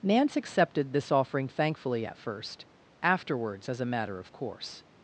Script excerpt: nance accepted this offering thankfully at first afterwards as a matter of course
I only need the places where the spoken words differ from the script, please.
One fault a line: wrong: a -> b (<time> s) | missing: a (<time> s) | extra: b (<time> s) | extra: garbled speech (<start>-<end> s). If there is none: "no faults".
no faults